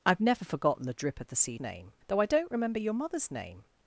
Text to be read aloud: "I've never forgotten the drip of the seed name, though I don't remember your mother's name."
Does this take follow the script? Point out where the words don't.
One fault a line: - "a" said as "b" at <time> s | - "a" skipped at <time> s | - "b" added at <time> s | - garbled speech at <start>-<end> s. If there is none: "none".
none